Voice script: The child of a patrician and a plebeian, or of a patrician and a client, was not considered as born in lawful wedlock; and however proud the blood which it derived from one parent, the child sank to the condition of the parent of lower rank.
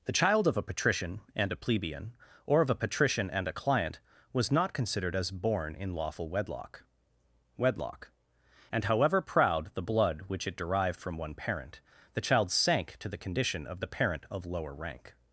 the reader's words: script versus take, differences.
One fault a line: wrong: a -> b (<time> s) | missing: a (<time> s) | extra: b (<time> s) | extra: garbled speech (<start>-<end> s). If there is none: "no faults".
extra: wedlock (7.5 s)